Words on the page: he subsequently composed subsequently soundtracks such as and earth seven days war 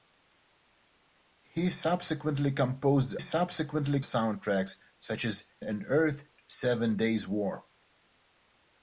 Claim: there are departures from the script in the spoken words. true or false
false